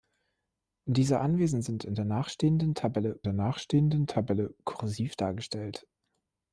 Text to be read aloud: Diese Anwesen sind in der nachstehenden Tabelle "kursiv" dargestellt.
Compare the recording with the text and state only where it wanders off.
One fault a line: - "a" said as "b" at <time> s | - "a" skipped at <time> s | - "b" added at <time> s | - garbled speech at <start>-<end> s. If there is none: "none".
- "der nachstehenden Tabelle" added at 3.2 s